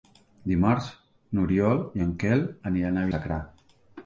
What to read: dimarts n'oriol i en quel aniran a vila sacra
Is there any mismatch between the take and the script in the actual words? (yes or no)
yes